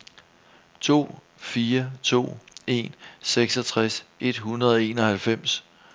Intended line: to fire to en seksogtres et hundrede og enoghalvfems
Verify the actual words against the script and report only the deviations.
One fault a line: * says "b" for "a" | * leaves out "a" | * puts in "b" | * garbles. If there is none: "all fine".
all fine